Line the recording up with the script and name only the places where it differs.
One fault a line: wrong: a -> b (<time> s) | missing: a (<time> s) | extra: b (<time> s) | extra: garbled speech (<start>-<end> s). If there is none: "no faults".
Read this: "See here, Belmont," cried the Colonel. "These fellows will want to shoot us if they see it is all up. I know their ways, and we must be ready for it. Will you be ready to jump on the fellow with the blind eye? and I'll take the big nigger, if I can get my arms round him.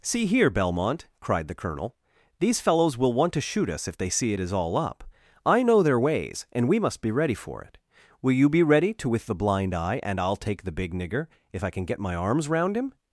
missing: jump on the fellow (9.1 s)